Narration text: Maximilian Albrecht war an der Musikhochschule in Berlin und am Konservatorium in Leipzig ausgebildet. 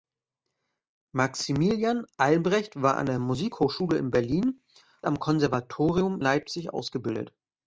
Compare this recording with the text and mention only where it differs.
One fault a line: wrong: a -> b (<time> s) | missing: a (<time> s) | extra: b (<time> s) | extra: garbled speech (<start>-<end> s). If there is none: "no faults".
missing: und (4.6 s)
missing: in (6.2 s)